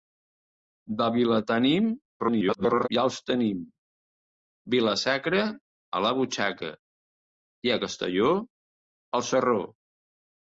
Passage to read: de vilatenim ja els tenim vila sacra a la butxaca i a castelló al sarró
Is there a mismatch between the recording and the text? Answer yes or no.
yes